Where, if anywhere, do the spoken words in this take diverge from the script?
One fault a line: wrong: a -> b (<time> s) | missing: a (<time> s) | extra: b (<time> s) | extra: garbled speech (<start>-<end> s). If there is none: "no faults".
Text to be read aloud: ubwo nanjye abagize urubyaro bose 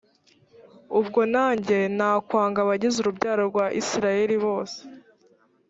extra: nakwanga (2.0 s)
extra: rwa isirayeli (3.5 s)